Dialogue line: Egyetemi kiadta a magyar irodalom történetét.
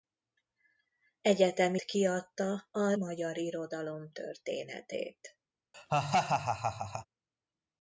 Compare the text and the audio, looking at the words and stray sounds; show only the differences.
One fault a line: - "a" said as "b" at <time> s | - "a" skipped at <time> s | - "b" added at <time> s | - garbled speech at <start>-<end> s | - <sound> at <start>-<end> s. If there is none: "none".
- laugh at 5.7-7.1 s